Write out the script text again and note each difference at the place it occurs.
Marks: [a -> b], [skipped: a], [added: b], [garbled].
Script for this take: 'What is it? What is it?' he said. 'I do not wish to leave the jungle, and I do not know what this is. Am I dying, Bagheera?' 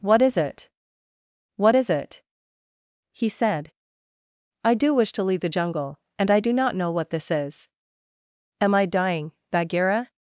'What is it? What is it?' he said. 'I do [skipped: not] wish to leave the jungle, and I do not know what this is. Am I dying, Bagheera?'